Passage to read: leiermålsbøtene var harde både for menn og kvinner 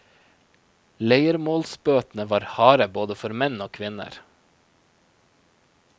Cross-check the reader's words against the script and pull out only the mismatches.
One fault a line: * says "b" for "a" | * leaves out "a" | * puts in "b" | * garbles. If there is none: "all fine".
all fine